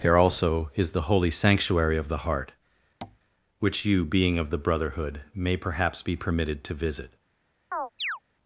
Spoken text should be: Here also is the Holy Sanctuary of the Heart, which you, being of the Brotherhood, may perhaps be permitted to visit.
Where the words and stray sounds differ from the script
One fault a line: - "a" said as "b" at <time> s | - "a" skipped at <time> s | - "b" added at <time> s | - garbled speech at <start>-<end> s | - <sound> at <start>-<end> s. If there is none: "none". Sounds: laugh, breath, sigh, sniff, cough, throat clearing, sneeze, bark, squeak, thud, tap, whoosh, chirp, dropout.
- tap at 3.0-3.2 s
- chirp at 7.7-8.2 s